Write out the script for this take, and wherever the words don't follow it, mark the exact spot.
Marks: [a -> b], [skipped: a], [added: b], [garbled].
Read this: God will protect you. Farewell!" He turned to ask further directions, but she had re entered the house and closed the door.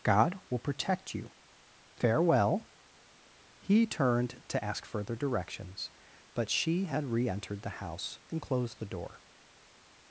God will protect you. Farewell!" He turned to ask further directions, but she had re entered the house and closed the door.